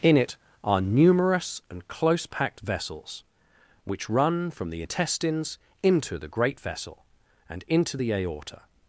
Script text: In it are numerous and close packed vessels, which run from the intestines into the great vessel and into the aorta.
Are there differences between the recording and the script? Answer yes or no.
no